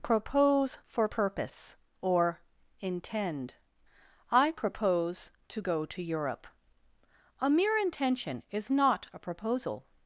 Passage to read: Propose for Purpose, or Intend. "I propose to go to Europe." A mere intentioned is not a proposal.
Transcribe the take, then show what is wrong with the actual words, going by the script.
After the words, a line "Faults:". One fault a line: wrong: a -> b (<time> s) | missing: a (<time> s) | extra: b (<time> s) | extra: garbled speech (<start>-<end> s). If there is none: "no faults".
Propose for Purpose, or Intend. "I propose to go to Europe." A mere intention is not a proposal.
Faults:
wrong: intentioned -> intention (7.8 s)